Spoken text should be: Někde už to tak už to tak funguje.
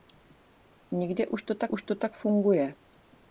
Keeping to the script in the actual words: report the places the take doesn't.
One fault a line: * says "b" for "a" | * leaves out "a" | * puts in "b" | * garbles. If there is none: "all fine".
all fine